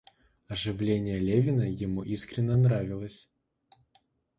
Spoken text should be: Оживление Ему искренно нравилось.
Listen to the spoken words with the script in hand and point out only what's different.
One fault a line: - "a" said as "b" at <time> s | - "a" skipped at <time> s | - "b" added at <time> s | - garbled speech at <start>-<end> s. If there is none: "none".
- "Левина" added at 1.2 s